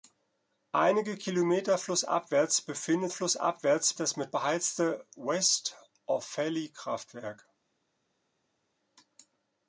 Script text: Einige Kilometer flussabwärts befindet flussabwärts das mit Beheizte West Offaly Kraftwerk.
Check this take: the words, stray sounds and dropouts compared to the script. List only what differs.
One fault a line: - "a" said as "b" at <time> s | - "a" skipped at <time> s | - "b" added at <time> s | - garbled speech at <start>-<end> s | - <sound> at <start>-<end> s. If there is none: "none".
none